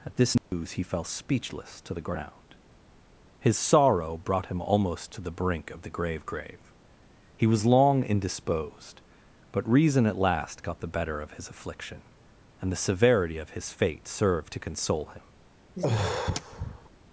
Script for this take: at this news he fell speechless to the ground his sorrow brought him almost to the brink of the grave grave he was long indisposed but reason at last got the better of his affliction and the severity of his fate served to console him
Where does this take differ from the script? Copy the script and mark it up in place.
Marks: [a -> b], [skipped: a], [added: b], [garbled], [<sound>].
at this news [dropout] he fell speechless to the ground his sorrow brought him almost to the brink of the grave grave he was long indisposed but reason at last got the better of his affliction and the severity of his fate served to console him [sigh]